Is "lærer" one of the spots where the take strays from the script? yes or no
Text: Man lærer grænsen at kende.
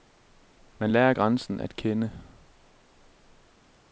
no